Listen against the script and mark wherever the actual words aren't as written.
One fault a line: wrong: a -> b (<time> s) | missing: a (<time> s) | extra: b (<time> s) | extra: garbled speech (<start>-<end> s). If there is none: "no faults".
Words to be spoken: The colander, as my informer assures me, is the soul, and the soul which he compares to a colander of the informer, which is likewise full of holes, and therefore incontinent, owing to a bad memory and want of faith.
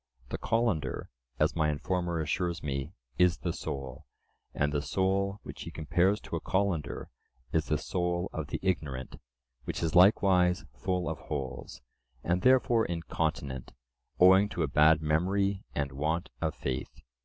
extra: is the soul (7.5 s)
wrong: informer -> ignorant (8.6 s)